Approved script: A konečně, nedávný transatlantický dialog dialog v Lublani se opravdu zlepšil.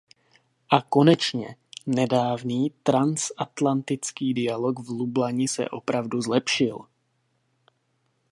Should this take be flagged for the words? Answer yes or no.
yes